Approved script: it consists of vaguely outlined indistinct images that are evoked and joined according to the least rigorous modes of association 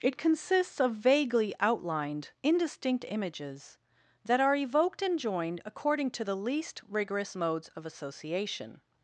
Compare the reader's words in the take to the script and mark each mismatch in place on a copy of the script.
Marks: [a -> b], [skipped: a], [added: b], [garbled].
it consists of vaguely outlined indistinct images that are evoked and joined according to the least rigorous modes of association